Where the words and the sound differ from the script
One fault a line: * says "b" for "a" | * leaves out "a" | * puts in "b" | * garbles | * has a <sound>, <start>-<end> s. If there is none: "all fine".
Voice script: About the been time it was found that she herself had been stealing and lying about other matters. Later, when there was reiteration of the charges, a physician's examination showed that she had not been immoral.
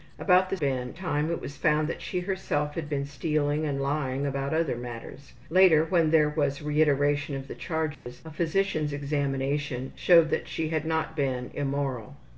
* has a dropout, 7.9-8.1 s